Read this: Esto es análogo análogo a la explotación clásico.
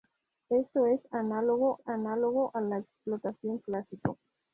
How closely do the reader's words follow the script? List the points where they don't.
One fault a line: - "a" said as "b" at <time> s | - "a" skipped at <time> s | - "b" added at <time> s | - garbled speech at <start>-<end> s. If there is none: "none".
none